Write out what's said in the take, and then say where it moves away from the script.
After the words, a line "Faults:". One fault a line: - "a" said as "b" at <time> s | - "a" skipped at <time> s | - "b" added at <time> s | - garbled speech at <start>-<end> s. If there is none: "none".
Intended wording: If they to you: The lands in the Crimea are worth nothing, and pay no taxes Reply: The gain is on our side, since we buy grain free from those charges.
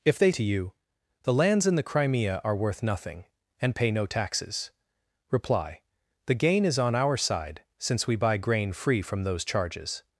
If they to you: The lands in the Crimea are worth nothing, and pay no taxes Reply: The gain is on our side, since we buy grain free from those charges.
Faults:
none